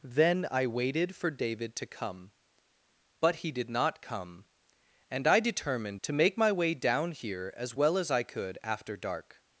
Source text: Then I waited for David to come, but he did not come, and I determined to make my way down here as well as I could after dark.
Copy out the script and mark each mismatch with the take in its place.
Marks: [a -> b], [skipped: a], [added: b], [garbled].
Then I waited for David to come, but he did not come, and I determined to make my way down here as well as I could after dark.